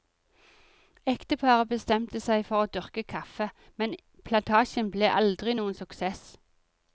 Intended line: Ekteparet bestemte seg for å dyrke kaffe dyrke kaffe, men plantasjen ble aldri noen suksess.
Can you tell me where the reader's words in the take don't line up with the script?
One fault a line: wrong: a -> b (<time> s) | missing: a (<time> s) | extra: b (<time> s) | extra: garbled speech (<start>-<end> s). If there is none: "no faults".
missing: dyrke kaffe (3.5 s)